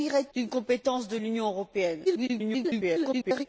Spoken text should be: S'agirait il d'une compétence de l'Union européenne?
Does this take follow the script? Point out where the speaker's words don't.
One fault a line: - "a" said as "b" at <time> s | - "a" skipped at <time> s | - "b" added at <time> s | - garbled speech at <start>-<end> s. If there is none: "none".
- "il" skipped at 0.3 s
- garbled speech at 2.1-3.5 s